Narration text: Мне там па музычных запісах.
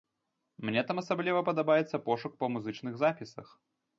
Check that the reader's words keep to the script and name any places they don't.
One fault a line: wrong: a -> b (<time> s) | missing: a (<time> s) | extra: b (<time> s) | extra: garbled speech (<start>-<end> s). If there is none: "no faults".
extra: асабліва падабаецца пошук (1.0 s)